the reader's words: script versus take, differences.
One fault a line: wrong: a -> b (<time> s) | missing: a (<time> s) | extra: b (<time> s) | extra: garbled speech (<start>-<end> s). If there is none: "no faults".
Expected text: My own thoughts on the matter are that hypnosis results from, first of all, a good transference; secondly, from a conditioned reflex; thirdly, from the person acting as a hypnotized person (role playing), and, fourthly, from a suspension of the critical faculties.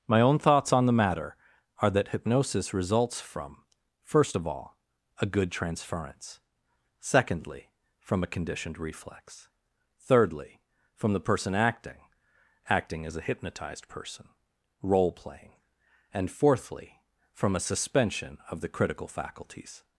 extra: acting (12.7 s)